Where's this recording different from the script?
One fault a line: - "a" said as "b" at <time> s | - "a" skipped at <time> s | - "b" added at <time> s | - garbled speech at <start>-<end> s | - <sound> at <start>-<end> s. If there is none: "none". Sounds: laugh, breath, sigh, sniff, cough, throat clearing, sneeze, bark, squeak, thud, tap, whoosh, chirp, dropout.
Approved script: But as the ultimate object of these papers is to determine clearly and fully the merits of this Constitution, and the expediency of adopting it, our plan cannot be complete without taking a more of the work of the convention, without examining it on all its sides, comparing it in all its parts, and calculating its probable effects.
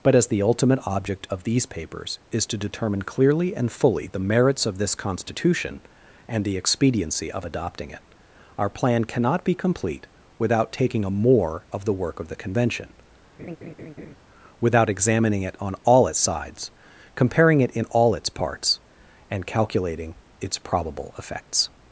- laugh at 13.4-14.1 s